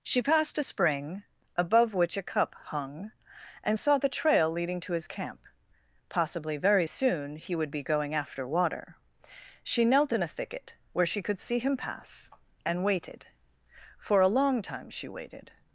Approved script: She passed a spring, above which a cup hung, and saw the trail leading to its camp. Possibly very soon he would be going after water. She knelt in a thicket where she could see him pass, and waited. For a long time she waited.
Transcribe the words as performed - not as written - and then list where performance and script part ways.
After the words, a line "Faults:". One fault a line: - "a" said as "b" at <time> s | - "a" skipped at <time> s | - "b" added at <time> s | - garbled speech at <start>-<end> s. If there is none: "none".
She passed a spring, above which a cup hung, and saw the trail leading to his camp. Possibly very soon he would be going after water. She knelt in a thicket where she could see him pass, and waited. For a long time she waited.
Faults:
- "its" said as "his" at 4.9 s